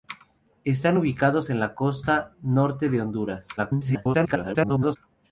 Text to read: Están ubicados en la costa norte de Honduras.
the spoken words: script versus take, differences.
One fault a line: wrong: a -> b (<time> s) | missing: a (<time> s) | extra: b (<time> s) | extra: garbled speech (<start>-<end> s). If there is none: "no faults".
extra: garbled speech (3.6-5.0 s)